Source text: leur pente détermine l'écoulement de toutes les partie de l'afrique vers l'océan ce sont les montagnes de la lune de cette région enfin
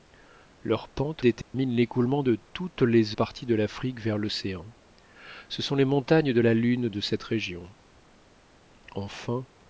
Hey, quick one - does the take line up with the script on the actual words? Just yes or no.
yes